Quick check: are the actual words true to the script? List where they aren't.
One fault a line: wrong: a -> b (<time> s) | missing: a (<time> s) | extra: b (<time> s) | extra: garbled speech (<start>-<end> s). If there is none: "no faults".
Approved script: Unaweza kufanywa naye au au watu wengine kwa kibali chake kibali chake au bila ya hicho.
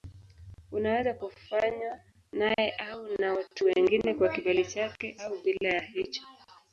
wrong: au -> na (3.2 s)
missing: kibali chake (5.2 s)